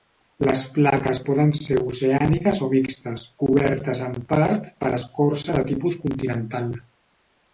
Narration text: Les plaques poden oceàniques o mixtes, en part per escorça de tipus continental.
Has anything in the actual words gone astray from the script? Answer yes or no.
yes